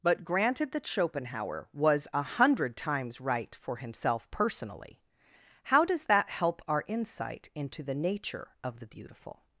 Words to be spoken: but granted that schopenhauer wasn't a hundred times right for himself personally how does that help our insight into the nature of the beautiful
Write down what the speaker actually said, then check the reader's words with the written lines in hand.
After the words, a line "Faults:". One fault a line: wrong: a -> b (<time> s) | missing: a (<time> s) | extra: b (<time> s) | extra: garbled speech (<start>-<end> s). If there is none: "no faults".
but granted that schopenhauer was a hundred times right for himself personally how does that help our insight into the nature of the beautiful
Faults:
wrong: wasn't -> was (1.7 s)